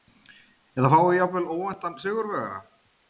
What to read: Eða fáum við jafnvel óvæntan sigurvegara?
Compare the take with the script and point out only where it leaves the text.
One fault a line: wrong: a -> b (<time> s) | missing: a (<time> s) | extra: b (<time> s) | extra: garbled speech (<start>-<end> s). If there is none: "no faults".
no faults